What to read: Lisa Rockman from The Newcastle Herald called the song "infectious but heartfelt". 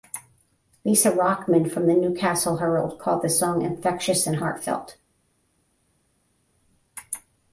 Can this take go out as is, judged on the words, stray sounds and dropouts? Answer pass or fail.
fail